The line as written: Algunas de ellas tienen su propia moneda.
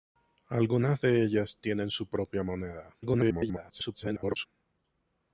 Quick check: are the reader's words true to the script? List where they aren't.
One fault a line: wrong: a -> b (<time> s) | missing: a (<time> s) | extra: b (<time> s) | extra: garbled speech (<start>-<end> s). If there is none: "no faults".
extra: garbled speech (3.0-4.5 s)